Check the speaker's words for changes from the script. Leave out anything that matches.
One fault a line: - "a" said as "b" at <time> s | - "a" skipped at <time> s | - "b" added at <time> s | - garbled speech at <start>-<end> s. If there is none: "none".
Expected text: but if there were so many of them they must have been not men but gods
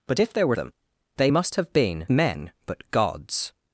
- "so many of" skipped at 0.6 s
- "not" skipped at 2.1 s